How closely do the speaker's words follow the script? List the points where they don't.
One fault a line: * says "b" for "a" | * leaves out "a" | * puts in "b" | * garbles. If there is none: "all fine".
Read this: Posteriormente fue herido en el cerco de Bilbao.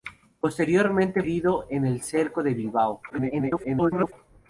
* leaves out "fue"
* garbles